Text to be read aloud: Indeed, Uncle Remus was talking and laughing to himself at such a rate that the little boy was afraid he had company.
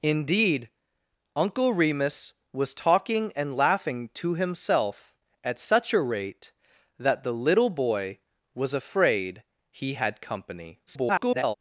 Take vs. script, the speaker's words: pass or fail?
fail